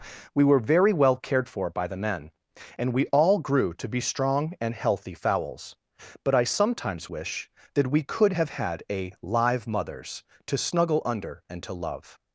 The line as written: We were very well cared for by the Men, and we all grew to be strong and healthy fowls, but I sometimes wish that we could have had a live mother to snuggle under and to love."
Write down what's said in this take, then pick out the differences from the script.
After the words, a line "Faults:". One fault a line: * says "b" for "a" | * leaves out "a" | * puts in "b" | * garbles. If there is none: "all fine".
We were very well cared for by the Men, and we all grew to be strong and healthy fowls, but I sometimes wish that we could have had a live mothers to snuggle under and to love."
Faults:
* says "mothers" for "mother"